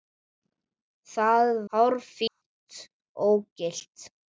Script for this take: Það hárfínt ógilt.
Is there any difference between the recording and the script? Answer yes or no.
no